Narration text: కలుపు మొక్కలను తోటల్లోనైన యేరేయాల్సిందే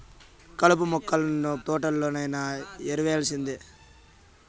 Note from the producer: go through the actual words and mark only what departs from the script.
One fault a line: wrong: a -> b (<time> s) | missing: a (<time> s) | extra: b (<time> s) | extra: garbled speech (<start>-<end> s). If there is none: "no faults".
no faults